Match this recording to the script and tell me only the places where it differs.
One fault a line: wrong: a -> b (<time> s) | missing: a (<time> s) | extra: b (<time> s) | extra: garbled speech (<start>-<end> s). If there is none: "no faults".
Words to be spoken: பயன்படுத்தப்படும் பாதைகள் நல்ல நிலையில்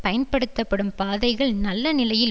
no faults